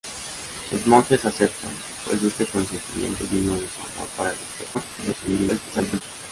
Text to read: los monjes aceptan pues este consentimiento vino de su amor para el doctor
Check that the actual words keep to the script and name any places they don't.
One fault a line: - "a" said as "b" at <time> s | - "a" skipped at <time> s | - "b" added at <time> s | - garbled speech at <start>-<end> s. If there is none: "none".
- garbled speech at 4.7-6.0 s